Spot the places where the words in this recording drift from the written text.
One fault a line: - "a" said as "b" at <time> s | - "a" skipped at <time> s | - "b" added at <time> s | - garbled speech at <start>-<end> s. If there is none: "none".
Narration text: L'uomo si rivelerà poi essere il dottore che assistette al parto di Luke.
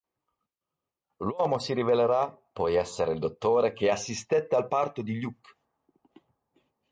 none